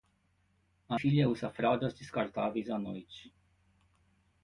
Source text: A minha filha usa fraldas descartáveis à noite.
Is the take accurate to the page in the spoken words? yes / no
no